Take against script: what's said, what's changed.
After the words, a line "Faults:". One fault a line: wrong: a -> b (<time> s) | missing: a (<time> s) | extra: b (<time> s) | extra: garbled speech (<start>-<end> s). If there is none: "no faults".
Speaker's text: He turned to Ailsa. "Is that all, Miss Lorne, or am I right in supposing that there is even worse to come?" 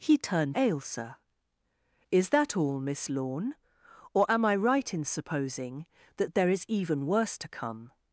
He turned Ailsa. "Is that all, Miss Lorne, or am I right in supposing that there is even worse to come?"
Faults:
missing: to (0.6 s)